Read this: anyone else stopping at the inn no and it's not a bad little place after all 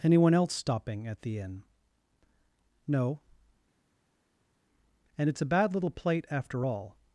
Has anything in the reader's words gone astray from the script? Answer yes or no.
yes